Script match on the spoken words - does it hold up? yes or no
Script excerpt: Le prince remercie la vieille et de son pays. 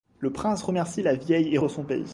yes